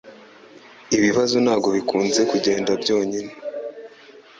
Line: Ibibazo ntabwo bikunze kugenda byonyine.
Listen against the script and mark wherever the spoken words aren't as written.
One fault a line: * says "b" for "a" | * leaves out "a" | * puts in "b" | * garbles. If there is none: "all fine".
all fine